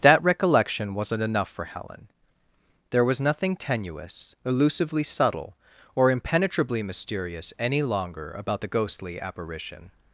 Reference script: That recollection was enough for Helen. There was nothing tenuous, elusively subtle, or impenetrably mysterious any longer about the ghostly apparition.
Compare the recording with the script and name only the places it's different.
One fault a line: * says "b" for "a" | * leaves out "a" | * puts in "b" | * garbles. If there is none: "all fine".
* says "wasn't" for "was"